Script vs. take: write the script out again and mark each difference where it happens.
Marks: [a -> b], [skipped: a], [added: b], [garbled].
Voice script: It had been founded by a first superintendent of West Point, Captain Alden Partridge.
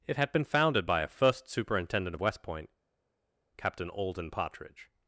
It had been founded by a first superintendent of West Point, Captain Alden Partridge.